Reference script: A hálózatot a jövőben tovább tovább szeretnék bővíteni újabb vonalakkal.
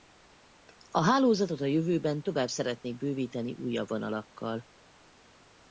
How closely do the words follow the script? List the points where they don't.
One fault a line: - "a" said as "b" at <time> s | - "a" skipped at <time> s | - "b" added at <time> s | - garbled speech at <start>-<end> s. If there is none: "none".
- "tovább" skipped at 2.5 s